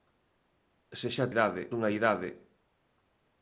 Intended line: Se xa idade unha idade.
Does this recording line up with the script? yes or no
yes